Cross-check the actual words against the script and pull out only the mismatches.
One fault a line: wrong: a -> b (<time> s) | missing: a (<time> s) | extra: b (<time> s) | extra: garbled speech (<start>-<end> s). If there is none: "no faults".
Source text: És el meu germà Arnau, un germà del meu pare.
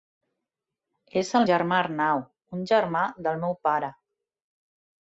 missing: meu (1.4 s)